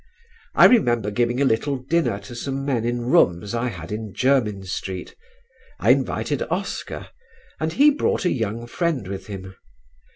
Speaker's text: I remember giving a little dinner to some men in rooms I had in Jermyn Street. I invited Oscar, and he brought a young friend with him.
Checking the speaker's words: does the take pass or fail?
pass